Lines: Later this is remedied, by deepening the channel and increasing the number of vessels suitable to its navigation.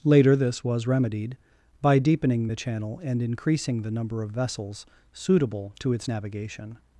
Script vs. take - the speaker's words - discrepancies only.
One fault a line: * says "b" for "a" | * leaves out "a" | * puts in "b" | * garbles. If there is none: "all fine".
* says "was" for "is"